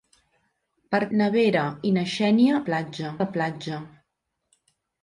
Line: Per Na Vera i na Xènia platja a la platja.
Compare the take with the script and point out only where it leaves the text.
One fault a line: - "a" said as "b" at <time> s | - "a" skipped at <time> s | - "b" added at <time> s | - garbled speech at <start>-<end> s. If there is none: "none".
none